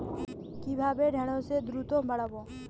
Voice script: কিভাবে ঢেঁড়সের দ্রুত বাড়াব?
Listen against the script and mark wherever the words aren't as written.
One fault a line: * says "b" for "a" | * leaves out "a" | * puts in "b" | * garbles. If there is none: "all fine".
all fine